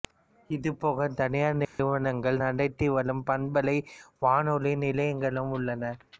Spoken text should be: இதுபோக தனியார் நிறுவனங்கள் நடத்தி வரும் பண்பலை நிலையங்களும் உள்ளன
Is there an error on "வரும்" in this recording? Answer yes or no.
no